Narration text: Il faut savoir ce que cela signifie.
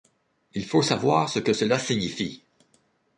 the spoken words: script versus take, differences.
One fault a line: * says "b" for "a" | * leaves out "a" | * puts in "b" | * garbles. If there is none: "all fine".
all fine